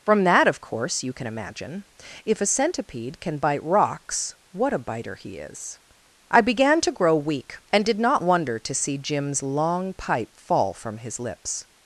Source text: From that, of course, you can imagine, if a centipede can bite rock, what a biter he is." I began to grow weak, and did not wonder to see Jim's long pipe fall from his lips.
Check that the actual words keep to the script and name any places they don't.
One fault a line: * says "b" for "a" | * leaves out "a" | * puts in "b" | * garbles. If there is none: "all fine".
* says "rocks" for "rock"